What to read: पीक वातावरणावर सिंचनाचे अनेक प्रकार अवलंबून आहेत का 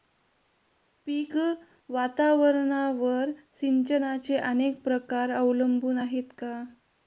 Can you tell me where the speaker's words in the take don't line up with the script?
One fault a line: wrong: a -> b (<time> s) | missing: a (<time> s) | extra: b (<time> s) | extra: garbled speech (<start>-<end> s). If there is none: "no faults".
no faults